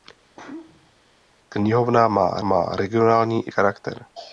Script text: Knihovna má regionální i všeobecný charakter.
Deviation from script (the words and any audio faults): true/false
true